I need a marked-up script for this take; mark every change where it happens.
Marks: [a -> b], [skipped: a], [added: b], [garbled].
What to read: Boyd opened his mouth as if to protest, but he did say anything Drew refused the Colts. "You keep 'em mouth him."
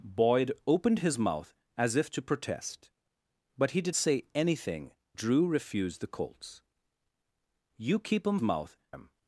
Boyd opened his mouth as if to protest, but he did say anything Drew refused the Colts. "You keep 'em mouth him."